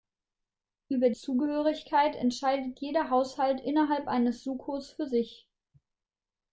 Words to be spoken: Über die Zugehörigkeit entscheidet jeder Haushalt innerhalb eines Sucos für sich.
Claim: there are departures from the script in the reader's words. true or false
true